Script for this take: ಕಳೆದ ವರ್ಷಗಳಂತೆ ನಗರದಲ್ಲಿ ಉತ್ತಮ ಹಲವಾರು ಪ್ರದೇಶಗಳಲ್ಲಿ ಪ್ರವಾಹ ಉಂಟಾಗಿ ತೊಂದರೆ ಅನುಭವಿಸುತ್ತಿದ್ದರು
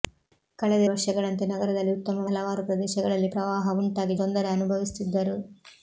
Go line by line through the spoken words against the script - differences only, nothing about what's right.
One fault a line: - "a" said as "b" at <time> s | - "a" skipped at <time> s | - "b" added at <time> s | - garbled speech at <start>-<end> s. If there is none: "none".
none